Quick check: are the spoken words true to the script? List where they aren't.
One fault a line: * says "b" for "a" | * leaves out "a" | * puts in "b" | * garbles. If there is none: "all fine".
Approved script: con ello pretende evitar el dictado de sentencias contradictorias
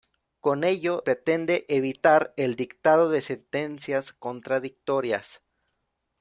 all fine